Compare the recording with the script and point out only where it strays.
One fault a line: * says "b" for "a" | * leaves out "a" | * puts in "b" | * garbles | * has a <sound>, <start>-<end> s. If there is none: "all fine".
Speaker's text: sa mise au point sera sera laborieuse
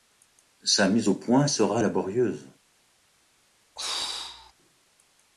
* leaves out "sera"
* has a throat clearing, 3.8-4.5 s